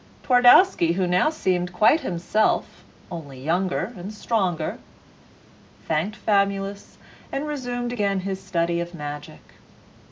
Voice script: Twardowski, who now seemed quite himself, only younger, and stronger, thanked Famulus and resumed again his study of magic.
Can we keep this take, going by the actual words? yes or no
yes